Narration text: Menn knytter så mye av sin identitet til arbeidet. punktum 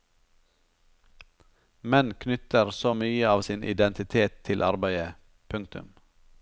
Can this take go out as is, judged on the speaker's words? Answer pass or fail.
pass